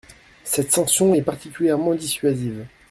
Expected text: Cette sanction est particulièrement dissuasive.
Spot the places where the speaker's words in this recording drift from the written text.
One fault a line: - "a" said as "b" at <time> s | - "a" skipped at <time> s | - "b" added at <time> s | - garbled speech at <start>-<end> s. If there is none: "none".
none